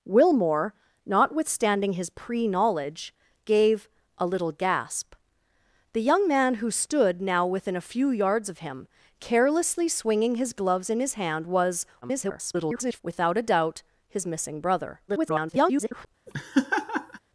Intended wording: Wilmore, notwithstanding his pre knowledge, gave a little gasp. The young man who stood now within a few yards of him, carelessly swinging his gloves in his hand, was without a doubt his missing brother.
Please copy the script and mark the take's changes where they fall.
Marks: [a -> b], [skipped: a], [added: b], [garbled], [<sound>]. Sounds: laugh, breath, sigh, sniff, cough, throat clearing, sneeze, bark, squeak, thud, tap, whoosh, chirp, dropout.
Wilmore, notwithstanding his pre knowledge, gave a little gasp. The young man who stood now within a few yards of him, carelessly swinging his gloves in his hand, was [garbled] without a doubt his missing brother. [garbled] [laugh]